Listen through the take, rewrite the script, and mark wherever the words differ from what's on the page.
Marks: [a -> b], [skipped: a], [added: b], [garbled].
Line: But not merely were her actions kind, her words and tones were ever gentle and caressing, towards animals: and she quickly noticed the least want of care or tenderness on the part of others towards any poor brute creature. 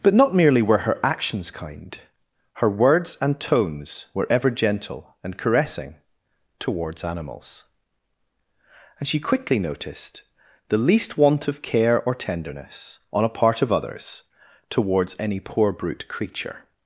But not merely were her actions kind, her words and tones were ever gentle and caressing, towards animals: and she quickly noticed the least want of care or tenderness on [the -> a] part of others towards any poor brute creature.